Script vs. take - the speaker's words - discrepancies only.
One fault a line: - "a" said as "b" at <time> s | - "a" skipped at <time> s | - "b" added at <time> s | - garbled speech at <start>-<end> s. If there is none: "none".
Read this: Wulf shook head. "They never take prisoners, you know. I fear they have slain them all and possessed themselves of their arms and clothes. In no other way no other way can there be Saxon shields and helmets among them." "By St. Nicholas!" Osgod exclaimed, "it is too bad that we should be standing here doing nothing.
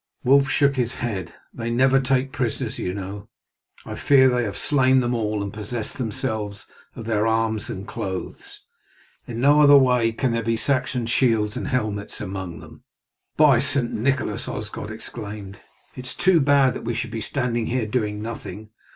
- "his" added at 0.8 s
- "no other way" skipped at 10.1 s